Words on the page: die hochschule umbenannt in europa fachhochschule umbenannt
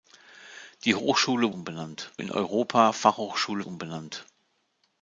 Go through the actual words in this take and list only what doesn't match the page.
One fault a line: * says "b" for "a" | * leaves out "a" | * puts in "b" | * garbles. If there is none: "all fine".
all fine